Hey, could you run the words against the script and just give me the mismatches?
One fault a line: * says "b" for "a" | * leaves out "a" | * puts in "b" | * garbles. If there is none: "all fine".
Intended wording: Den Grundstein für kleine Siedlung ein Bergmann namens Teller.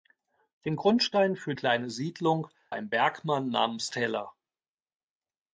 all fine